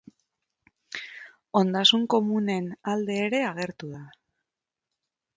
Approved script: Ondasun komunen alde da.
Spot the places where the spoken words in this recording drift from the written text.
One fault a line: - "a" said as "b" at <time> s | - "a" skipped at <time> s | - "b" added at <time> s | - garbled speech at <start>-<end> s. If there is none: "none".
- "ere agertu" added at 3.3 s